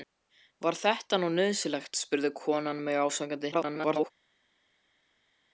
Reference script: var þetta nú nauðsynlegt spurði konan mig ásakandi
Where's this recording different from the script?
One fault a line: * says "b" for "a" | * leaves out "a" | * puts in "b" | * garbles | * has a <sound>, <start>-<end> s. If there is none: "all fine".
* garbles